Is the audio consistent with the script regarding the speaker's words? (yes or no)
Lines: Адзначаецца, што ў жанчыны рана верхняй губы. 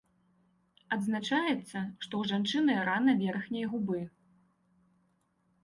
yes